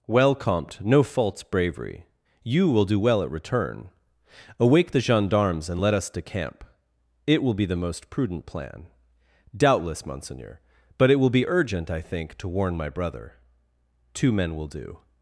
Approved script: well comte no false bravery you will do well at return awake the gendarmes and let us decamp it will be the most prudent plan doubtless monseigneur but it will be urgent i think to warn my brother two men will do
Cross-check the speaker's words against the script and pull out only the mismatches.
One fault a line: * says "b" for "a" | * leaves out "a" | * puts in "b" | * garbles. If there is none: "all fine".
all fine